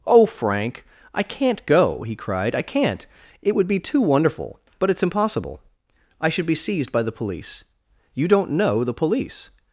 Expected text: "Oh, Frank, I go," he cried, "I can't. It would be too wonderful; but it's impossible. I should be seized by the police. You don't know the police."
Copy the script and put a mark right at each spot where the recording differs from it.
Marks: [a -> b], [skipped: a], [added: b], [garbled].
"Oh, Frank, I [added: can't] go," he cried, "I can't. It would be too wonderful; but it's impossible. I should be seized by the police. You don't know the police."